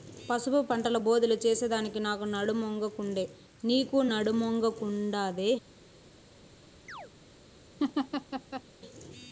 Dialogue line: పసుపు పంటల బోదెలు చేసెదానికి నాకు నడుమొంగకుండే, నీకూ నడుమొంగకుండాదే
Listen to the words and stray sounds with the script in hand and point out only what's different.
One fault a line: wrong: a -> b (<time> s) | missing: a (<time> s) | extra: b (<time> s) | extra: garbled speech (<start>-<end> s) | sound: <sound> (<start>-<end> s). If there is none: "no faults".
sound: chirp (6.9-7.1 s)
sound: laugh (7.8-8.6 s)